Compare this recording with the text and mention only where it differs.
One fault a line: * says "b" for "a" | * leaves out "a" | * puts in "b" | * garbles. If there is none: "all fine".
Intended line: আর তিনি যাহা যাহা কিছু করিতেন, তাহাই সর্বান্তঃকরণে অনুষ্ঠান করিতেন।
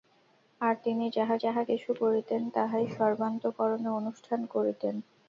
all fine